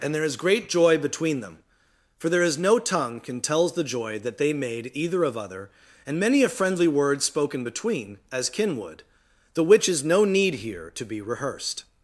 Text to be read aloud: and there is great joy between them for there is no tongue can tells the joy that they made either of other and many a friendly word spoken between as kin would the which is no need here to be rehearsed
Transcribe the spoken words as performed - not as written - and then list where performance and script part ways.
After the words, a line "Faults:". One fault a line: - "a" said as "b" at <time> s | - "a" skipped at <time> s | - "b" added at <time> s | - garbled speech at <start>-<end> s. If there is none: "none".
and there is great joy between them for there is no tongue can tells the joy that they made either of other and many a friendly word spoken between as kin would the which is no need here to be rehearsed
Faults:
none